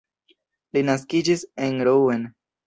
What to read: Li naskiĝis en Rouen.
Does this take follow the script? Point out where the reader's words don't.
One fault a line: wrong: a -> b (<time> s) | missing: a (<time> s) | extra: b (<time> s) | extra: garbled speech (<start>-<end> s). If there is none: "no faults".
no faults